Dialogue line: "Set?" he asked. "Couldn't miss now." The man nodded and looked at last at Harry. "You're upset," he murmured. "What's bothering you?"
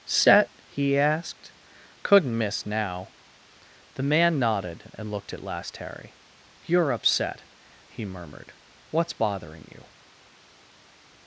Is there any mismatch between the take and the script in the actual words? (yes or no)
yes